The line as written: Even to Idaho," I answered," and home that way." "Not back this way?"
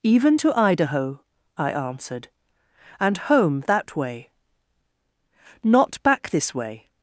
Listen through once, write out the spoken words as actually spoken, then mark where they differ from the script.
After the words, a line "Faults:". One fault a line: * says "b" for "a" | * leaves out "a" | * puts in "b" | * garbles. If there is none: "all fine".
Even to Idaho," I answered," and home that way." "Not back this way?"
Faults:
all fine